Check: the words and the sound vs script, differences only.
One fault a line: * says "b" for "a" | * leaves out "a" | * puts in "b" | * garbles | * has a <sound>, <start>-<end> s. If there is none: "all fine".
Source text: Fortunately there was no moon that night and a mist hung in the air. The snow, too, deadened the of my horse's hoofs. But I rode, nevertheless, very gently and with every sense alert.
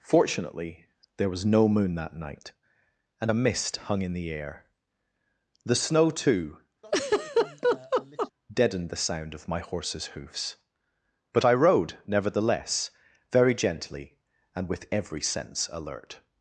* has a laugh, 6.8-8.3 s
* puts in "sound"